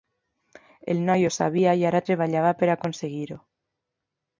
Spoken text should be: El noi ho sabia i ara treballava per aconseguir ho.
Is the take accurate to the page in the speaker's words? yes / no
yes